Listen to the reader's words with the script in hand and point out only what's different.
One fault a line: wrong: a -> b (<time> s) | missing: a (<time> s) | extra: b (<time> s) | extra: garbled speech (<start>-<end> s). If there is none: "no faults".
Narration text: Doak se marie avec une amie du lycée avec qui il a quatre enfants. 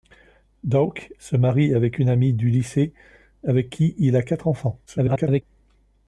extra: garbled speech (4.9-5.4 s)